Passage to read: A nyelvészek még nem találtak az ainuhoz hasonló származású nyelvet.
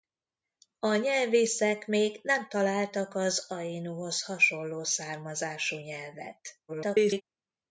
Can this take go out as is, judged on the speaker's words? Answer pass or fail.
fail